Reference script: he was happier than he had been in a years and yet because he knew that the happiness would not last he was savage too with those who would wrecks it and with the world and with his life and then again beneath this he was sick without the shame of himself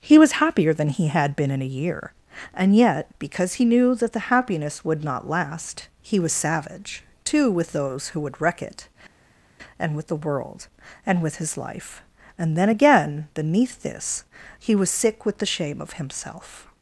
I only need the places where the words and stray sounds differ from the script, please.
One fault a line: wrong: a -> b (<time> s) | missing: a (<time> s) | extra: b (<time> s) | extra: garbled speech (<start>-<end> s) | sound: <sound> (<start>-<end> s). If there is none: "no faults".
wrong: years -> year (1.8 s)
wrong: wrecks -> wreck (8.4 s)
wrong: without -> with (15.2 s)